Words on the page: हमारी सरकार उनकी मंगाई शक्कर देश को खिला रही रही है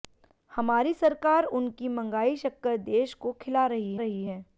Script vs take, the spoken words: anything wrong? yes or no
no